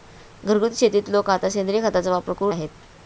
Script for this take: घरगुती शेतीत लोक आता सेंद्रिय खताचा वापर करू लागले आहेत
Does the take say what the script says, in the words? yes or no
no